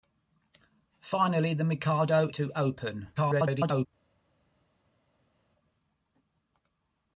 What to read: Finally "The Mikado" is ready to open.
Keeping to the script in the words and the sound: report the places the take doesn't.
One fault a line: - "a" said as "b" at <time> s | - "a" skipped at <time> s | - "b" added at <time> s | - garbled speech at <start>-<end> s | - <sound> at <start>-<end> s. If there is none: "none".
- "is ready" skipped at 2.3 s
- garbled speech at 3.2-3.9 s